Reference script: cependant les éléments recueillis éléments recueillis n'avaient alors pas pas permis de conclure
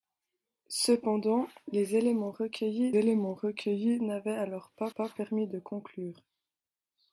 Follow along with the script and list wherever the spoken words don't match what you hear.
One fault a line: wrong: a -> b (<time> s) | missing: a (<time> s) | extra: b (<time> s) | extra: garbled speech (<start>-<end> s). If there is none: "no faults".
no faults